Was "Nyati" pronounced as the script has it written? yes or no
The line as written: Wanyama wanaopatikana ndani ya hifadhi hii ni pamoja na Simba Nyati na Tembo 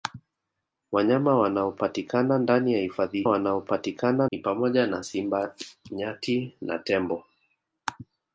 yes